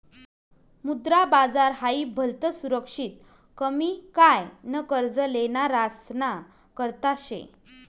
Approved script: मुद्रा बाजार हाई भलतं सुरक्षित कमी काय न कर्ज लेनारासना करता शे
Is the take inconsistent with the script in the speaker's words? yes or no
no